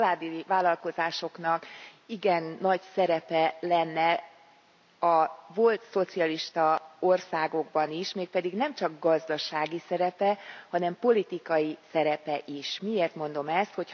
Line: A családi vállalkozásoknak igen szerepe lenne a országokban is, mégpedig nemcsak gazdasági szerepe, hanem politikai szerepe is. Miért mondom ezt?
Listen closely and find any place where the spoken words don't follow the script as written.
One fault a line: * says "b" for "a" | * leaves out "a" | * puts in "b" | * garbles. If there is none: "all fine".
* puts in "nagy"
* puts in "volt szocialista"